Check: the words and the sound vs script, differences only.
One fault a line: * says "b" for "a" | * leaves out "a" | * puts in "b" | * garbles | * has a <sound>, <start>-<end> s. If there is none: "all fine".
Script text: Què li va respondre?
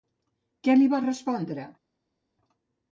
all fine